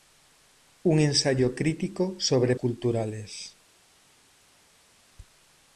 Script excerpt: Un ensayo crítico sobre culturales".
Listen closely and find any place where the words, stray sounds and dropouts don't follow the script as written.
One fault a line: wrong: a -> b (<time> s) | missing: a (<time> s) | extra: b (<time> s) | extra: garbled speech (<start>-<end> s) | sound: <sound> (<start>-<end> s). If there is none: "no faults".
no faults